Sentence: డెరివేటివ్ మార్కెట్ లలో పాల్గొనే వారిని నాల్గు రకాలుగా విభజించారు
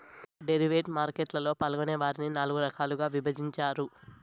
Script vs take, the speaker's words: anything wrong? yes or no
no